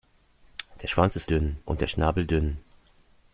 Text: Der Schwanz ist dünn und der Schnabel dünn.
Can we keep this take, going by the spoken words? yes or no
yes